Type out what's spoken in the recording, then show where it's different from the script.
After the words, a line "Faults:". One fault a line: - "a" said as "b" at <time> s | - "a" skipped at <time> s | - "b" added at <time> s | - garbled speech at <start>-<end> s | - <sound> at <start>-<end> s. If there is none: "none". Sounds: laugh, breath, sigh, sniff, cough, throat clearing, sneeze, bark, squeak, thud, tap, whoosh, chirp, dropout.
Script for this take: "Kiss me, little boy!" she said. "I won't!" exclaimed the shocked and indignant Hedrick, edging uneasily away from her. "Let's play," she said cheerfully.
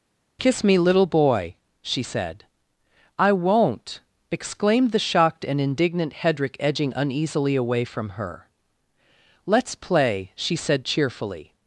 "Kiss me, little boy!" she said. "I won't!" exclaimed the shocked and indignant Hedrick, edging uneasily away from her. "Let's play," she said cheerfully.
Faults:
none